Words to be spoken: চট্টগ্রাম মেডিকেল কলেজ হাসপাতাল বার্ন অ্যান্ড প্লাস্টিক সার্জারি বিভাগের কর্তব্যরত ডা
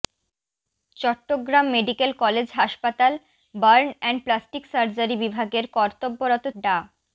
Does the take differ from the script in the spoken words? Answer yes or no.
no